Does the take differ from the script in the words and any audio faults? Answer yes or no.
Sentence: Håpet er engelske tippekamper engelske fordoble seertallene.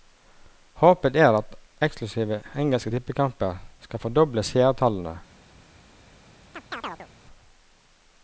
yes